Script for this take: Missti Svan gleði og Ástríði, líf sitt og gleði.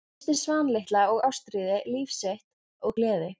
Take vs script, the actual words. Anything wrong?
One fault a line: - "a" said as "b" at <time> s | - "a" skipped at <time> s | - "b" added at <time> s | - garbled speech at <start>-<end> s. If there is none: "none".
- "gleði" said as "litla" at 0.8 s